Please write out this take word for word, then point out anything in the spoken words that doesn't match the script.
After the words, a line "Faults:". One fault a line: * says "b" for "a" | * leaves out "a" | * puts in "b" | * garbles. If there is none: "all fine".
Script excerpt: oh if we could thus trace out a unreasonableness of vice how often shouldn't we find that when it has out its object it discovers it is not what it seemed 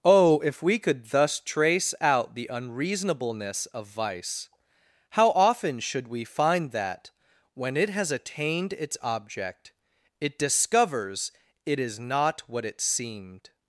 oh if we could thus trace out the unreasonableness of vice how often should we find that when it has attained its object it discovers it is not what it seemed
Faults:
* says "the" for "a"
* says "should" for "shouldn't"
* says "attained" for "out"